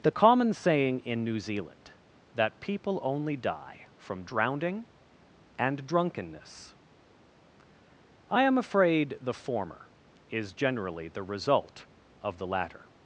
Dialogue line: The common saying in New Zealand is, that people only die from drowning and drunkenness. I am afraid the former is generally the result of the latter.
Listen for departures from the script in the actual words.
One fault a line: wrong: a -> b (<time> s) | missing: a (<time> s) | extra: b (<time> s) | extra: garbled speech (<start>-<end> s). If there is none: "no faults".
missing: is (1.9 s)